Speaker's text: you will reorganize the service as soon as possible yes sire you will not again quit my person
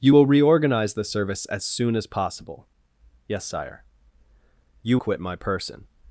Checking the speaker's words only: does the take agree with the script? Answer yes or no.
no